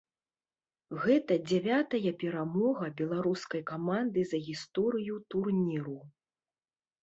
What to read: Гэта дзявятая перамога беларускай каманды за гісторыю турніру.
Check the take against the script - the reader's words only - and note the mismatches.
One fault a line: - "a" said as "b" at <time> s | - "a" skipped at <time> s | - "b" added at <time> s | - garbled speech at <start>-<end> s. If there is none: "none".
none